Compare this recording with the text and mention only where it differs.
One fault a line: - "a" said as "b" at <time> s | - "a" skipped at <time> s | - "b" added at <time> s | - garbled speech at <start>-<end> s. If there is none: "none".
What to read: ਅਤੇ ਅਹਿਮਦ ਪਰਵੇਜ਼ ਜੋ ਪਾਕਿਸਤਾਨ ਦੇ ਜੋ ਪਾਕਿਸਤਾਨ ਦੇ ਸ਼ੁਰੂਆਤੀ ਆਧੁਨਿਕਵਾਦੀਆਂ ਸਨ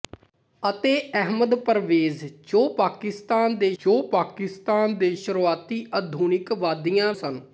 none